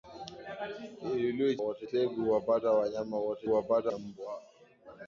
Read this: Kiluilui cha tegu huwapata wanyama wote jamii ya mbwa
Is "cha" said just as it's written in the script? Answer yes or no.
no